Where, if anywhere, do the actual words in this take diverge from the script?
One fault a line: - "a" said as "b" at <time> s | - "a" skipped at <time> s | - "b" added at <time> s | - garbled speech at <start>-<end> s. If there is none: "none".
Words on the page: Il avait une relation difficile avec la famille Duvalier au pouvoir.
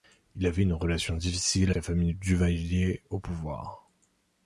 - "avec" skipped at 1.7 s